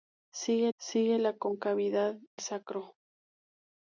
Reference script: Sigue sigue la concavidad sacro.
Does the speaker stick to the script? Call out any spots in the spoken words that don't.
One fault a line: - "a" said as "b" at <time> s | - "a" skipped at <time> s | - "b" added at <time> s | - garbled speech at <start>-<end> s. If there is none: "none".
none